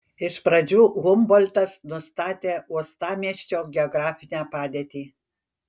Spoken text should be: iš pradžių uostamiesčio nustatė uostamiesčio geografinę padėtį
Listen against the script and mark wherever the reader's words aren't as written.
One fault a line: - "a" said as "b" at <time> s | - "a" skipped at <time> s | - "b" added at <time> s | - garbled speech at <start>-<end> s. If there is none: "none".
- "uostamiesčio" said as "humboltas" at 1.0 s